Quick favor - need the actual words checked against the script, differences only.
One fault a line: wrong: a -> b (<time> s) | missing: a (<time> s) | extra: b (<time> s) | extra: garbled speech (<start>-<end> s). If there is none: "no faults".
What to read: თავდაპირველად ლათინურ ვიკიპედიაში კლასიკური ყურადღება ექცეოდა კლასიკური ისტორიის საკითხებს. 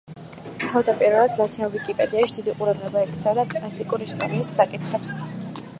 wrong: კლასიკური -> დიდი (2.4 s)